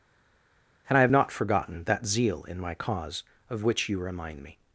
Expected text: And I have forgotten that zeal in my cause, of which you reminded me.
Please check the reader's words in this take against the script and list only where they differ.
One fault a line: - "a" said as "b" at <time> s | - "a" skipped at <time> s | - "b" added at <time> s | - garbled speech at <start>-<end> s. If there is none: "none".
- "not" added at 1.1 s
- "reminded" said as "remind" at 4.0 s